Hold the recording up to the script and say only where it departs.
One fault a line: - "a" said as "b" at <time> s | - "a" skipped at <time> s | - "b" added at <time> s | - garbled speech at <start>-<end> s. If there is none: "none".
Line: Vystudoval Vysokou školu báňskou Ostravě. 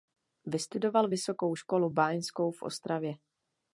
- "v" added at 2.5 s